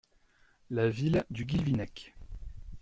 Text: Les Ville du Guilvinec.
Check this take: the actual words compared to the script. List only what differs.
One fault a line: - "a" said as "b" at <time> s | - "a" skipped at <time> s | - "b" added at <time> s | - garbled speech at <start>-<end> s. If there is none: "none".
- "Les" said as "La" at 0.7 s